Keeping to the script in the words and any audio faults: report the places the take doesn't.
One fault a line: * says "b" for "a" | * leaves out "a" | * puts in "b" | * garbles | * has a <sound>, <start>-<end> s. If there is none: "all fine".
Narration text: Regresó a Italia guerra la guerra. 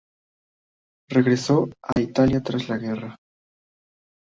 * has a dropout, 1.9-2.0 s
* says "tras" for "guerra"